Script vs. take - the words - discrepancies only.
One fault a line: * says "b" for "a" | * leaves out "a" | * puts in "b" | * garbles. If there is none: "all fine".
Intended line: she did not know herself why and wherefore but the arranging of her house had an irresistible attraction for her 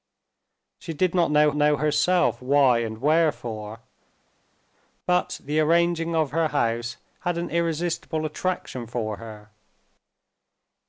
* puts in "know"